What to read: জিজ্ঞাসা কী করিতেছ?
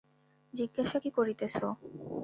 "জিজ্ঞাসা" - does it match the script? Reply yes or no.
yes